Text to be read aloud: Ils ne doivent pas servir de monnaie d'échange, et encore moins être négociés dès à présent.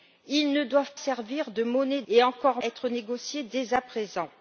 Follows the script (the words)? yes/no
no